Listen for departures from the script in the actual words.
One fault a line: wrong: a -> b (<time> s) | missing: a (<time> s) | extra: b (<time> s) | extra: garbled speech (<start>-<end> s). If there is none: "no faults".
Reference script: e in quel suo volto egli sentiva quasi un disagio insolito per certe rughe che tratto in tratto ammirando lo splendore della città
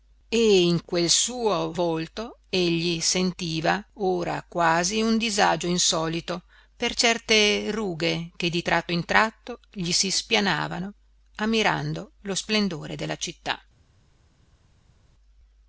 extra: ora (4.0 s)
extra: di (8.5 s)
extra: gli si spianavano (9.7 s)